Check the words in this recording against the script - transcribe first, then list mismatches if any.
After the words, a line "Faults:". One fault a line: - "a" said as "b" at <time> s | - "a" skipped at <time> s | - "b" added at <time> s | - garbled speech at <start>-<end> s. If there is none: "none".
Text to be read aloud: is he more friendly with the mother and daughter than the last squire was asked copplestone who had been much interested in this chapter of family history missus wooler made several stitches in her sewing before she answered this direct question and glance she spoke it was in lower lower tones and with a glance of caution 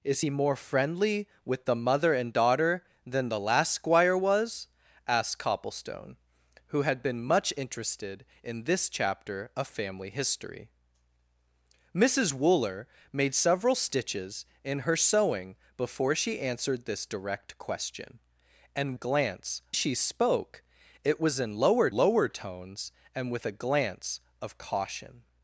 is he more friendly with the mother and daughter than the last squire was asked copplestone who had been much interested in this chapter of family history missus wooler made several stitches in her sewing before she answered this direct question and glance she spoke it was in lower lower tones and with a glance of caution
Faults:
none